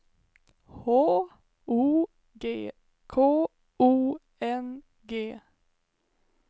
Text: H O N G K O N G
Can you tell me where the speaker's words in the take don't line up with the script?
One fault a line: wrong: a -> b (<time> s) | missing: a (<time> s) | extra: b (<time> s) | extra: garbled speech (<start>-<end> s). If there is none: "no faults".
missing: N (2.1 s)